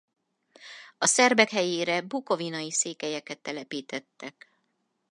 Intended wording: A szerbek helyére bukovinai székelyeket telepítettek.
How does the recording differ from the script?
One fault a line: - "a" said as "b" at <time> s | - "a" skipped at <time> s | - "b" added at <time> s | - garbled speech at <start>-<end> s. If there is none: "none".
none